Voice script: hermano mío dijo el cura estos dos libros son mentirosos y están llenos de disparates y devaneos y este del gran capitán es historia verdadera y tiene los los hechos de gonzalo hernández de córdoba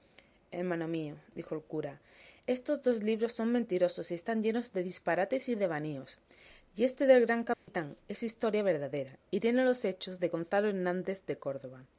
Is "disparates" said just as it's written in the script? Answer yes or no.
yes